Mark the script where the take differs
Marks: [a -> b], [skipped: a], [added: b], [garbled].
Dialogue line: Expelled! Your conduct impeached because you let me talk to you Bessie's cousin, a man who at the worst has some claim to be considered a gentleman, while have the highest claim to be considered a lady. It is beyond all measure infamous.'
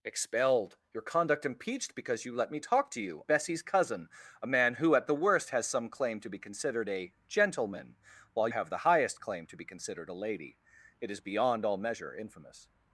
Expelled! Your conduct impeached because you let me talk to you Bessie's cousin, a man who at the worst has some claim to be considered a gentleman, while have the highest claim to be considered a lady. It is beyond all measure infamous.'